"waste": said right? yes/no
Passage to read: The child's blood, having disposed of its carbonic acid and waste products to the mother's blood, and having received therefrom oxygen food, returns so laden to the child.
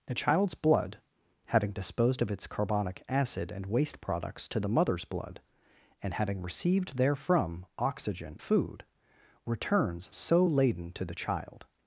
yes